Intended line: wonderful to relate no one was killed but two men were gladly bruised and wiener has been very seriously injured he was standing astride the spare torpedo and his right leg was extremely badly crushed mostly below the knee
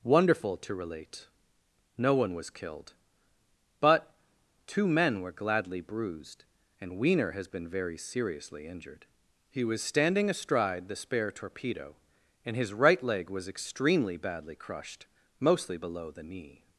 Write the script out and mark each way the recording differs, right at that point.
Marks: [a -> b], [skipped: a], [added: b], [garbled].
wonderful to relate no one was killed but two men were gladly bruised and wiener has been very seriously injured he was standing astride the spare torpedo and his right leg was extremely badly crushed mostly below the knee